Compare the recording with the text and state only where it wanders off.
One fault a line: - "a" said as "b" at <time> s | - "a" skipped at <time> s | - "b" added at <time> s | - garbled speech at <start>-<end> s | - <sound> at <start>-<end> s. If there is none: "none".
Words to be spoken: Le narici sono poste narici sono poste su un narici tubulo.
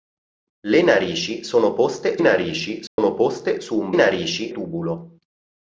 - dropout at 2.9-3.0 s